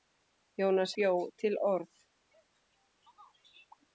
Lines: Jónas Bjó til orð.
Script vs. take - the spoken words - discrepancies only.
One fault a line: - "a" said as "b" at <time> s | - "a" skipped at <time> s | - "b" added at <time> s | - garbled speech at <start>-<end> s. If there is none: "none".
none